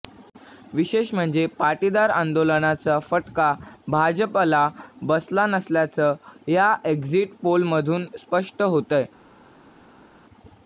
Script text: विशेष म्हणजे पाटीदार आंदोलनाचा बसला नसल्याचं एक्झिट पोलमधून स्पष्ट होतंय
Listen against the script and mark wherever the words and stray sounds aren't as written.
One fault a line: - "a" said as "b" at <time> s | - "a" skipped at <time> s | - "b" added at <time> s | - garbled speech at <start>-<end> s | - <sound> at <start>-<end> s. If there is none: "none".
- "फटका भाजपला" added at 3.0 s
- "या" added at 6.5 s